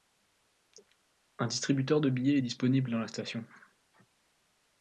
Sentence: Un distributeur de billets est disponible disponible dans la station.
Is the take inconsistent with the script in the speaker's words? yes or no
yes